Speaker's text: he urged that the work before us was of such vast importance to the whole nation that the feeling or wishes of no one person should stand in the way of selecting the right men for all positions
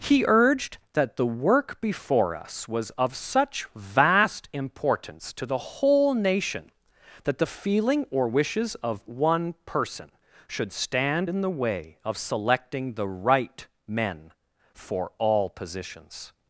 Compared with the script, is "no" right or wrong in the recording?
wrong